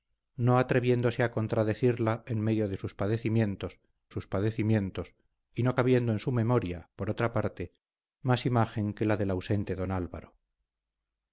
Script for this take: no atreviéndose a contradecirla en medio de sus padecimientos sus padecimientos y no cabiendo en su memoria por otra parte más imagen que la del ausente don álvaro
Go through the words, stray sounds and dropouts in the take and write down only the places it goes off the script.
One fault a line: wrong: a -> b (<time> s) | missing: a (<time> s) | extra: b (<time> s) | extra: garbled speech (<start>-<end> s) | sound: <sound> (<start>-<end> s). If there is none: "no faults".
no faults